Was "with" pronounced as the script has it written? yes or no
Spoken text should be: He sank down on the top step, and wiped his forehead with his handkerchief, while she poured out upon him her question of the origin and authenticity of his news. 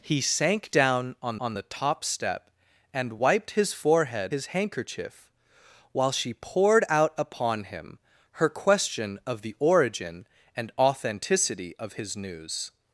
no